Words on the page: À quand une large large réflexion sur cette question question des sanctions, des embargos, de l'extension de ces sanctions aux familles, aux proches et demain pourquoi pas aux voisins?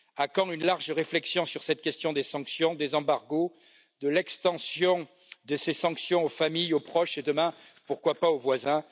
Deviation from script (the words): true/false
true